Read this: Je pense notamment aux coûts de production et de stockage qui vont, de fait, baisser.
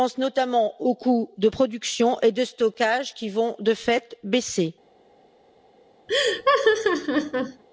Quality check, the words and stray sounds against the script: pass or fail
fail